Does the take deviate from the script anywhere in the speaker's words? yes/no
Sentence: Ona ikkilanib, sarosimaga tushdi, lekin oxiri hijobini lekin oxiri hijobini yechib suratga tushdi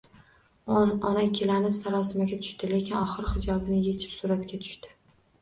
yes